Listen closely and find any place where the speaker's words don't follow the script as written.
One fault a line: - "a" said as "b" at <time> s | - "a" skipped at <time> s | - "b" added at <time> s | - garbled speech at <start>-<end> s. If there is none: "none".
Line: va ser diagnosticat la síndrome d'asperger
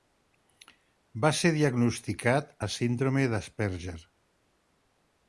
none